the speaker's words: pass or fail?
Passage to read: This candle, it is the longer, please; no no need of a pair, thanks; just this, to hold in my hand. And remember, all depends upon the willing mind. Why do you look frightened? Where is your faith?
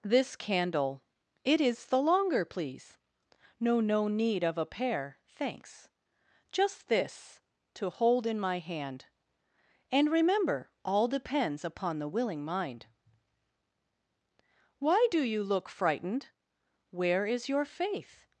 pass